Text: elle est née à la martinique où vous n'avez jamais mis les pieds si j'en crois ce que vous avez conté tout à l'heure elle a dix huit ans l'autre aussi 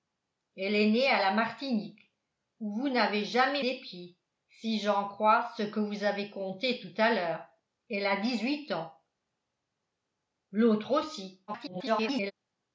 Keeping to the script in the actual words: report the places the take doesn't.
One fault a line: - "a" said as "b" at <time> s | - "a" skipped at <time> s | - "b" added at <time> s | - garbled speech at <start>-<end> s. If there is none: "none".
- "mis" skipped at 3.6 s
- garbled speech at 11.5-12.3 s